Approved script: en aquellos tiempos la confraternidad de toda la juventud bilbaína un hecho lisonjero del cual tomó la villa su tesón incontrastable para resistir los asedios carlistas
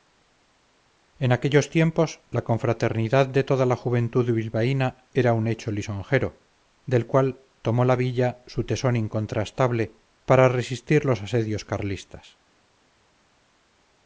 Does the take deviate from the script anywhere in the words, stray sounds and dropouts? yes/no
yes